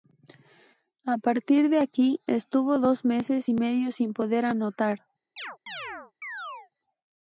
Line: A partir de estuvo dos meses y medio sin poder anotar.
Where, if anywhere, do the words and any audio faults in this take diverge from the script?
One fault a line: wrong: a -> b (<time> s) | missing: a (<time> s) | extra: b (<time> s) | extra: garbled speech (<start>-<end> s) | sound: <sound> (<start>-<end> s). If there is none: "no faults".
extra: aquí (1.8 s)
sound: chirp (5.4-6.7 s)